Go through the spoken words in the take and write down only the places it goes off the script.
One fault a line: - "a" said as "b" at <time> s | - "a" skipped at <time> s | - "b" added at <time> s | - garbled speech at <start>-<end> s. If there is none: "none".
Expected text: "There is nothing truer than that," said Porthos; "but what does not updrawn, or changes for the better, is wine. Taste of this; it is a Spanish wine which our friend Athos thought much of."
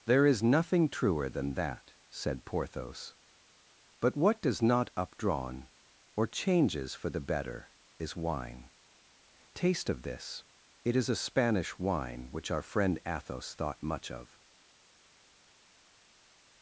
none